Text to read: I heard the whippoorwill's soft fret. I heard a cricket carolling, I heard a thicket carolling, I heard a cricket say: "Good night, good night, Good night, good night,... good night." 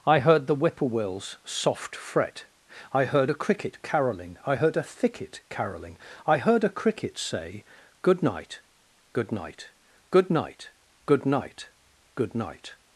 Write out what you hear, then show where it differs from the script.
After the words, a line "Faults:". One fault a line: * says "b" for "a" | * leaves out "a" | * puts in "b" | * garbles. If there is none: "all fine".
I heard the whippoorwill's soft fret. I heard a cricket carolling, I heard a thicket carolling, I heard a cricket say: "Good night, good night, Good night, good night,... good night."
Faults:
all fine